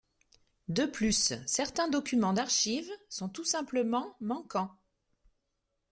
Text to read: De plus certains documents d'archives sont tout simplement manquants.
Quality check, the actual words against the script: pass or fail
pass